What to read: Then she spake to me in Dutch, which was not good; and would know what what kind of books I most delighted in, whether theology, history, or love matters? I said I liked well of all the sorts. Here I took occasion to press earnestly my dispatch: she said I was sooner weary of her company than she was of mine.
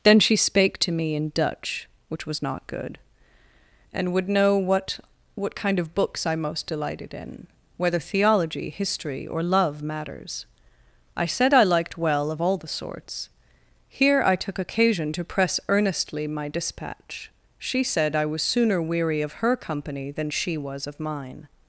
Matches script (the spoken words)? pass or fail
pass